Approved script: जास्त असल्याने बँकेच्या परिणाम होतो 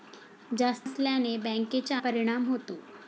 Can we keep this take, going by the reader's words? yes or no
yes